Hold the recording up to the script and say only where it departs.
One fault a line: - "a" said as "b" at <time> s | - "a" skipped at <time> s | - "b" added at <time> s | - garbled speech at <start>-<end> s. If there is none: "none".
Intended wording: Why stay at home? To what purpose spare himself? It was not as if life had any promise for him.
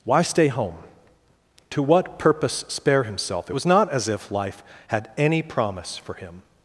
- "at" skipped at 0.5 s